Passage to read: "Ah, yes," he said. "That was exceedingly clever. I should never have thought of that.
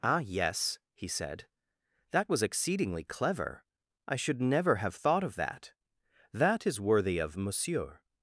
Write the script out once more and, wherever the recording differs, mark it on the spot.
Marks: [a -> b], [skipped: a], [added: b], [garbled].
"Ah, yes," he said. "That was exceedingly clever. I should never have thought of that. [added: That is worthy of Monsieur]